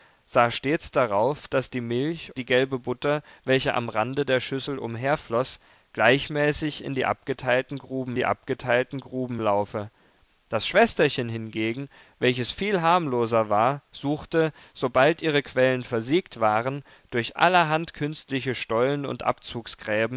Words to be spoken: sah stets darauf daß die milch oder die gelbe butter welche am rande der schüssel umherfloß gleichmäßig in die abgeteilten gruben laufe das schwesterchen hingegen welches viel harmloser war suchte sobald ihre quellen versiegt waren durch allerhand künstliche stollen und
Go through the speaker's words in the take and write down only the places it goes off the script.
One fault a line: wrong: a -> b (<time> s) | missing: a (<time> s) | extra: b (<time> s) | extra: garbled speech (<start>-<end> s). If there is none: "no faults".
missing: oder (2.3 s)
extra: die abgeteilten gruben (8.1 s)